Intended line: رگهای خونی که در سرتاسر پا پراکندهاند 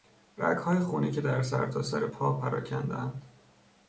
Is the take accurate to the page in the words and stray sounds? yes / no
yes